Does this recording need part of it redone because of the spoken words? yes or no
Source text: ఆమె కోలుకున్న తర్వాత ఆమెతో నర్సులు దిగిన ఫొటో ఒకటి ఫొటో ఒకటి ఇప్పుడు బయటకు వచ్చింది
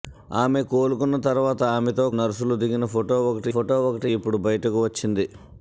no